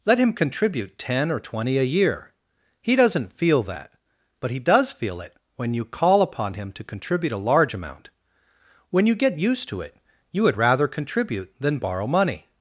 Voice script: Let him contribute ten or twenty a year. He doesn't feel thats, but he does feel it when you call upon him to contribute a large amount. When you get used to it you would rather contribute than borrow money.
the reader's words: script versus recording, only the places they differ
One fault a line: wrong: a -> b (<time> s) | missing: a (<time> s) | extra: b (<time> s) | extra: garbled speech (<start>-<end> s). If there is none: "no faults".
wrong: thats -> that (3.6 s)